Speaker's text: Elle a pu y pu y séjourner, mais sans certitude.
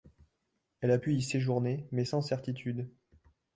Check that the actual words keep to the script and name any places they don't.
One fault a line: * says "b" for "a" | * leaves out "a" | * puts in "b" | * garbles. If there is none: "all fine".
* leaves out "pu y"